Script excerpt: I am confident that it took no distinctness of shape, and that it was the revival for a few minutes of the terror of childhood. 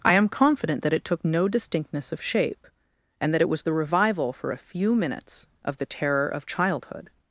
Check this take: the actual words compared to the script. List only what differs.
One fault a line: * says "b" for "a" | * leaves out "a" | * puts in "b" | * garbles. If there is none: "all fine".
all fine